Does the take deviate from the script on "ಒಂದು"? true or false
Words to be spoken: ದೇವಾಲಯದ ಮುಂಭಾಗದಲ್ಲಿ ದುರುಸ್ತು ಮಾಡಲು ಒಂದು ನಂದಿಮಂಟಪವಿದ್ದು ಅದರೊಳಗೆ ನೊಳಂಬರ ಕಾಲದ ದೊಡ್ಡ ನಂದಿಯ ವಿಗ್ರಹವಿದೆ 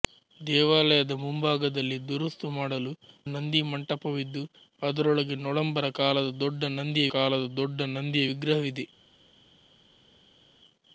true